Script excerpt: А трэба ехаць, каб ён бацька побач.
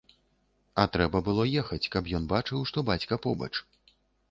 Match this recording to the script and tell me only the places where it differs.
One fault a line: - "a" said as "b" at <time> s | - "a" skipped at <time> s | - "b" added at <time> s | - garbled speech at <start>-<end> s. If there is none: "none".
- "было" added at 1.3 s
- "бачыў што" added at 2.3 s